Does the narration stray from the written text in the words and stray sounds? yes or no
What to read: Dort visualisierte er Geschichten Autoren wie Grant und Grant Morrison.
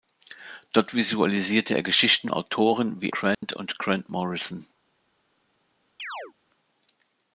yes